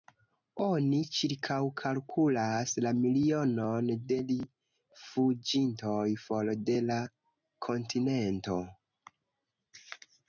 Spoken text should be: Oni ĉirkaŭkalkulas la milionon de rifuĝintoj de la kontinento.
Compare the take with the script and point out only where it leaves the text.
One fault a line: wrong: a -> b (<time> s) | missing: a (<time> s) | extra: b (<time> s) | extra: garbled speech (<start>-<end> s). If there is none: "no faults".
extra: for (6.2 s)